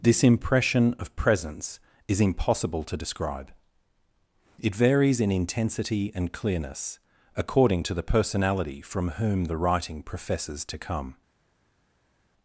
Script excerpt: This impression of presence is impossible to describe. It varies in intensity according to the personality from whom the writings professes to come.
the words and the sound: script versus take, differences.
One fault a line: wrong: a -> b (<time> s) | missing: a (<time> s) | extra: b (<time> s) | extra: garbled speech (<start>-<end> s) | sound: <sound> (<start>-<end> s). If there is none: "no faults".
extra: and clearness (6.2 s)
wrong: writings -> writing (9.6 s)